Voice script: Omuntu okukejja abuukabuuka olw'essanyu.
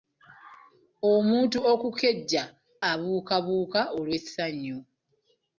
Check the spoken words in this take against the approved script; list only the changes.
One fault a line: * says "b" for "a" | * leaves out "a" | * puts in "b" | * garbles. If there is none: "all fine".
all fine